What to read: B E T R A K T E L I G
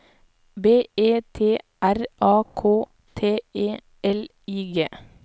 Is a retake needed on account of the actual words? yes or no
no